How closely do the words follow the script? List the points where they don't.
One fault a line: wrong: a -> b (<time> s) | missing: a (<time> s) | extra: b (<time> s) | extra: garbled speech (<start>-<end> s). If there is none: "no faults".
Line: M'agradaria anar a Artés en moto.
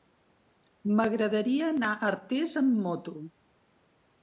wrong: en -> amb (2.6 s)